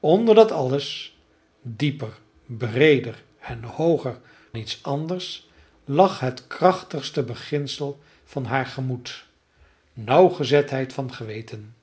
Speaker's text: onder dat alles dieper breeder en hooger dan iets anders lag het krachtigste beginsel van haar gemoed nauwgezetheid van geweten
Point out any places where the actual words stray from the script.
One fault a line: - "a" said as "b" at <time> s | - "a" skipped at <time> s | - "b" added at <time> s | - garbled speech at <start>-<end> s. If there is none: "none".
- "dan" skipped at 4.2 s